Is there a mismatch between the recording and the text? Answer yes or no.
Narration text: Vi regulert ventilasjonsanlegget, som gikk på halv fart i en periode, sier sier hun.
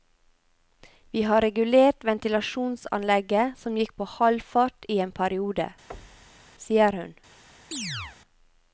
yes